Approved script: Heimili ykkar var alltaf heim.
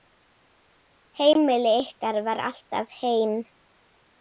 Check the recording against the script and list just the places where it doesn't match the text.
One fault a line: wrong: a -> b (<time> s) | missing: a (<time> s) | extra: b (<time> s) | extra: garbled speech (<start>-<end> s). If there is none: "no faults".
no faults